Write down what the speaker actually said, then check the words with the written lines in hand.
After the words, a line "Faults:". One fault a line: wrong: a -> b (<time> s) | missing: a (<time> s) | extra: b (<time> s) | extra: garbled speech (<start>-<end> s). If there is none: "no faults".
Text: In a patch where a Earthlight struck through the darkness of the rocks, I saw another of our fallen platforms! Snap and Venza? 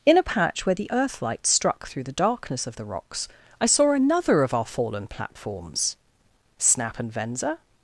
In a patch where the Earthlight struck through the darkness of the rocks, I saw another of our fallen platforms! Snap and Venza?
Faults:
wrong: a -> the (0.8 s)